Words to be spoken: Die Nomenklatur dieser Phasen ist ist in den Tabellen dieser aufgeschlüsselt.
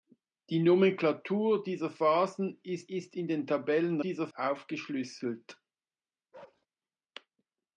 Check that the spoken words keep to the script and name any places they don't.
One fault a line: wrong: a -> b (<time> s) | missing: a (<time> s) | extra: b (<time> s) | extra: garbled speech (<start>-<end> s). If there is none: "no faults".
no faults